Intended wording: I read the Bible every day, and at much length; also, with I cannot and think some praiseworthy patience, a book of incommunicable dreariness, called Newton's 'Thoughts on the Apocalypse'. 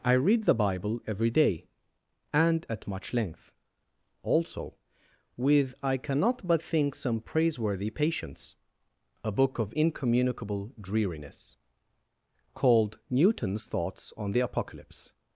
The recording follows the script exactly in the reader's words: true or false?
false